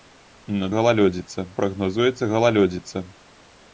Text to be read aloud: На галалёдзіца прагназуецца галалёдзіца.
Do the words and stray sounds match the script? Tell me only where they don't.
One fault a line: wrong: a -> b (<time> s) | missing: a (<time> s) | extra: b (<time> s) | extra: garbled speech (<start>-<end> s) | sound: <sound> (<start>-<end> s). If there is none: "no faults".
no faults